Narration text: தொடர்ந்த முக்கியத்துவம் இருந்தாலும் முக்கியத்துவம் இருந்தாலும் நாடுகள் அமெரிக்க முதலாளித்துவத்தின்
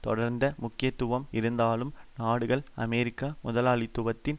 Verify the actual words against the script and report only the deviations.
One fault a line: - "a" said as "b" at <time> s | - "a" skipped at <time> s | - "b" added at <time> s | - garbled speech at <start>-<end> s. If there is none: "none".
- "முக்கியத்துவம் இருந்தாலும்" skipped at 1.9 s